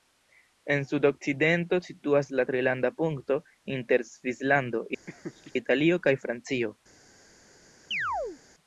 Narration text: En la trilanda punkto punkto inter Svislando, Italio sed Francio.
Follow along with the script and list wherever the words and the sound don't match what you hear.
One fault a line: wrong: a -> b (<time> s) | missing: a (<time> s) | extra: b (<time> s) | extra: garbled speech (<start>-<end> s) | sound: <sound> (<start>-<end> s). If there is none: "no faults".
extra: sudokcidento situas (0.9 s)
missing: punkto (3.4 s)
sound: laugh (5.1-5.5 s)
wrong: sed -> kaj (6.1 s)
sound: chirp (7.9-8.4 s)